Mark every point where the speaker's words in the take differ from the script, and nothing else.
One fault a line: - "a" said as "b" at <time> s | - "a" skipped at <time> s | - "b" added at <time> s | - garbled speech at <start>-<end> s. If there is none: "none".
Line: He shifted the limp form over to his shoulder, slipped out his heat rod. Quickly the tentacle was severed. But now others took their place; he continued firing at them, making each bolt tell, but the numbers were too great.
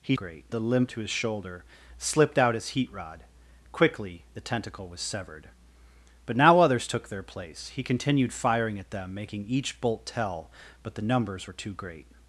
- "shifted" said as "great" at 0.1 s
- "form over" skipped at 0.9 s